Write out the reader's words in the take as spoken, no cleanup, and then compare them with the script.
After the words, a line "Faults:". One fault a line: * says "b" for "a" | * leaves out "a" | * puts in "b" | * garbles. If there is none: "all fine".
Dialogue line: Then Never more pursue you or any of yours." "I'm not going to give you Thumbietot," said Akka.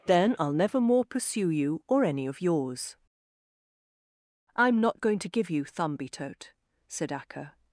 Then I'll never more pursue you or any of yours." "I'm not going to give you Thumbietot," said Akka.
Faults:
* puts in "I'll"